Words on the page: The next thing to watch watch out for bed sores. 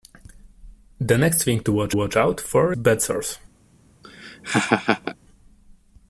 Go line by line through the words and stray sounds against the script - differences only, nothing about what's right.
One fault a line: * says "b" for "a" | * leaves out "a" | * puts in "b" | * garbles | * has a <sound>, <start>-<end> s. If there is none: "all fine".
* has a laugh, 4.0-5.2 s